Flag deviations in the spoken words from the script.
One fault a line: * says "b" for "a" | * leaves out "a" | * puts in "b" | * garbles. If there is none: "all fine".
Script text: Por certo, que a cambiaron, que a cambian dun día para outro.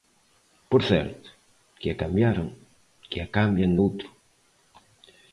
* leaves out "dun día para"